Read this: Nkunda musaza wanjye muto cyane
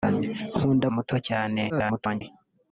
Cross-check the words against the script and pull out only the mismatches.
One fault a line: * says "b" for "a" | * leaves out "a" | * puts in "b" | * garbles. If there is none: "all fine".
* leaves out "musaza wanjye"
* garbles